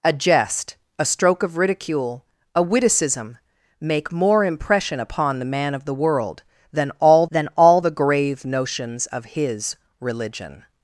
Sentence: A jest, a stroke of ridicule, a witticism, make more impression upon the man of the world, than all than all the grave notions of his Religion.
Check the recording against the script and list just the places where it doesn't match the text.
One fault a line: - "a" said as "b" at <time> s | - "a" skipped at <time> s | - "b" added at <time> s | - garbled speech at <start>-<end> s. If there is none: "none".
none